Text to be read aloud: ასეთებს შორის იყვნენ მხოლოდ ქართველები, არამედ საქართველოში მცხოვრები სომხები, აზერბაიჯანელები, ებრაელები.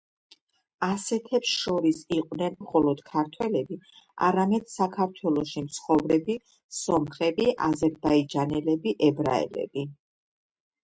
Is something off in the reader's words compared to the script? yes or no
no